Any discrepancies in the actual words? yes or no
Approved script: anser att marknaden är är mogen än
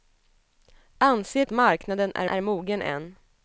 no